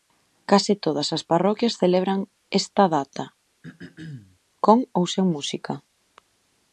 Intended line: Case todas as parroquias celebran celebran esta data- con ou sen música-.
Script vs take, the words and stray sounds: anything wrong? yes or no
yes